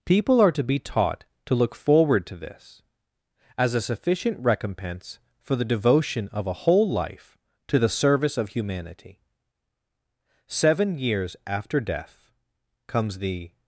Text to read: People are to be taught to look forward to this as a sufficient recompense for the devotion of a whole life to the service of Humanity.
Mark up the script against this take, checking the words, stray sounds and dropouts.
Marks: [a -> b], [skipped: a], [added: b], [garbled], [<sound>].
People are to be taught to look forward to this as a sufficient recompense for the devotion of a whole life to the service of Humanity. [added: Seven years after death comes the]